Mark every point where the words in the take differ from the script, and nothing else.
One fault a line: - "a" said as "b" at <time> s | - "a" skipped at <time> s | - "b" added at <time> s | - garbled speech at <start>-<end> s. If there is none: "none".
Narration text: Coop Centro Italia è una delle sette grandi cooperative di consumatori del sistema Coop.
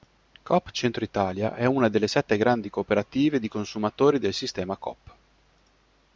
none